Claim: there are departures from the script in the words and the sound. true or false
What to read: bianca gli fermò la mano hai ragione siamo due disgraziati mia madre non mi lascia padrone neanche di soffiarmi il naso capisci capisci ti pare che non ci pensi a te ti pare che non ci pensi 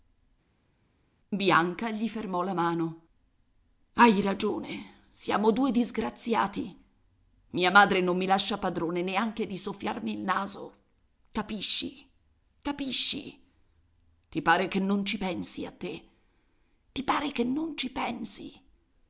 false